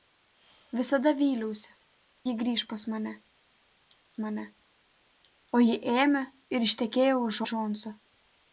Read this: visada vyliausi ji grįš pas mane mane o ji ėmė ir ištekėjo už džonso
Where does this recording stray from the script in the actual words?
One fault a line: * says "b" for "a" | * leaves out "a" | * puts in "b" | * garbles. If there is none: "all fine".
all fine